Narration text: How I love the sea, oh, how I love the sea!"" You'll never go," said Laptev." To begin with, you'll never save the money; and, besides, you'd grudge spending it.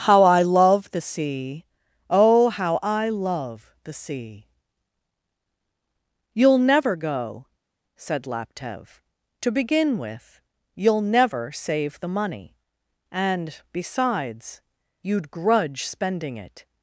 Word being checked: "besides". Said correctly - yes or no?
yes